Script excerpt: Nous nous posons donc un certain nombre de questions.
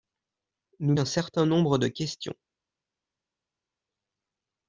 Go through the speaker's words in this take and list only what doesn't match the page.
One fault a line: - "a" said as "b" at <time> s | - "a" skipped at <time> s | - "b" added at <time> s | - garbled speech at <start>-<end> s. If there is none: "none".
- "nous posons donc" skipped at 0.9 s